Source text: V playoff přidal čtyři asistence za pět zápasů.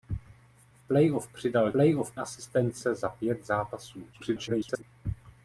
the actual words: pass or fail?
fail